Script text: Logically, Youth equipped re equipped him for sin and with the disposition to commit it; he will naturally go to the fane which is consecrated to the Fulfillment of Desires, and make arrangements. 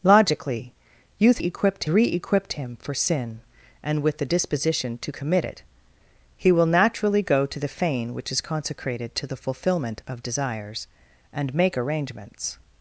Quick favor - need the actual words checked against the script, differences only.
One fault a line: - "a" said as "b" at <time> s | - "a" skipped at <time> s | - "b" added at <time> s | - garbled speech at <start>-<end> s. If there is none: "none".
none